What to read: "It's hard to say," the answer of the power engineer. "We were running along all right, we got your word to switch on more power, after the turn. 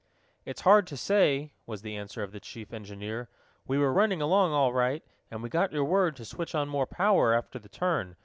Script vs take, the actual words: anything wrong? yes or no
yes